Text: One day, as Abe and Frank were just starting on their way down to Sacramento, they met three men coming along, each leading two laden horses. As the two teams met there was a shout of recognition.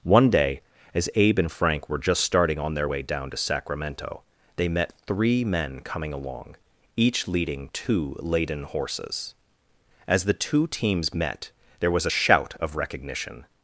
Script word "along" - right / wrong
right